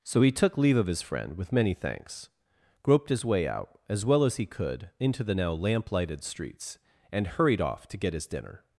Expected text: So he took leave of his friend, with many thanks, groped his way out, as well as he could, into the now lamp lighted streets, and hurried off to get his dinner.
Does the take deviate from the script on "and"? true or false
false